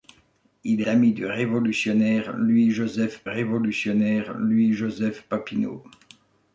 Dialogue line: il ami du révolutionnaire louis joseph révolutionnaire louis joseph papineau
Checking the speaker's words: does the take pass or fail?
pass